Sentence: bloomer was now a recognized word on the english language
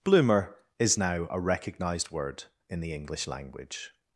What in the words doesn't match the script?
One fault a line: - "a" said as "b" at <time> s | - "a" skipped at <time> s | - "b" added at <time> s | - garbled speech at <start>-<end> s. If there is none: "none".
- "was" said as "is" at 0.8 s
- "on" said as "in" at 2.7 s